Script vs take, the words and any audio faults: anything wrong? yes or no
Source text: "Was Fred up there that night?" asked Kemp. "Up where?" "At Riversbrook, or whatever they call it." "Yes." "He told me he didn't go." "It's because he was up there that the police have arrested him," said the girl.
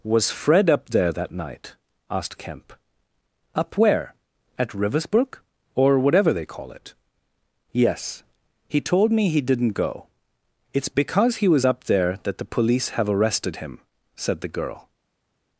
no